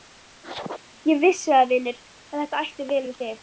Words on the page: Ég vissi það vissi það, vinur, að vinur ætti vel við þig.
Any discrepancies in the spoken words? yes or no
yes